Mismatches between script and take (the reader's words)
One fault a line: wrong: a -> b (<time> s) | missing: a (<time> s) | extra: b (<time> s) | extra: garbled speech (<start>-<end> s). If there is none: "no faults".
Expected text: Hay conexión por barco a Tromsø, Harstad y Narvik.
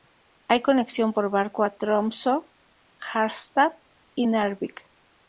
no faults